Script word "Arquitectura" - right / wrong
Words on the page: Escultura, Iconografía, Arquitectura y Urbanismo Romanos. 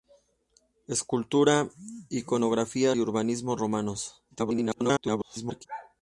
wrong